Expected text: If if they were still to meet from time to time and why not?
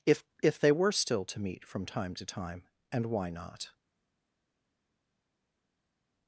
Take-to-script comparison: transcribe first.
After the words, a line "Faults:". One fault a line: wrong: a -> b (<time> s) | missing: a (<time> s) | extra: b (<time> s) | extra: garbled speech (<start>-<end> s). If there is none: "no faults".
If if they were still to meet from time to time and why not?
Faults:
no faults